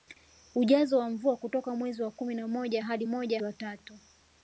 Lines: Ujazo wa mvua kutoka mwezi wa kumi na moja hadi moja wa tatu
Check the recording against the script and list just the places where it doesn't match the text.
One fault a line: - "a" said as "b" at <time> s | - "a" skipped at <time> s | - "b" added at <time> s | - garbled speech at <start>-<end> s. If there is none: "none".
none